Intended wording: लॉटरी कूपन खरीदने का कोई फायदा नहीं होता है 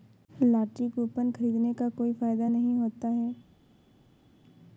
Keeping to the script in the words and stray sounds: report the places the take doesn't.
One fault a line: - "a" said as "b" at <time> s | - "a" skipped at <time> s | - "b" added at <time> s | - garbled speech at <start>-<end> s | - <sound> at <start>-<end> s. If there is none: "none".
none